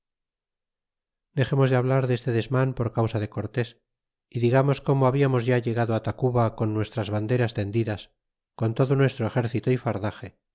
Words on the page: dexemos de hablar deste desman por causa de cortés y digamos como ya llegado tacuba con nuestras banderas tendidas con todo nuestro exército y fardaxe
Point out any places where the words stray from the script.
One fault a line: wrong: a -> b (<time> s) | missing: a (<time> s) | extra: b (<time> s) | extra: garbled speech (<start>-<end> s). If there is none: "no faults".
extra: hablamos (5.1 s)